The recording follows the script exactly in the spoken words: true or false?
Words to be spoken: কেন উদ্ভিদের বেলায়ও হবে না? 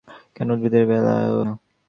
false